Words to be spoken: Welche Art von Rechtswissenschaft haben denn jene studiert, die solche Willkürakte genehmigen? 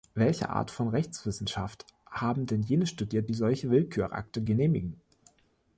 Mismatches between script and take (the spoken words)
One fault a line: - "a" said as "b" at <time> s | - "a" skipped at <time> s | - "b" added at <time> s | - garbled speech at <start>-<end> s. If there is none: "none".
none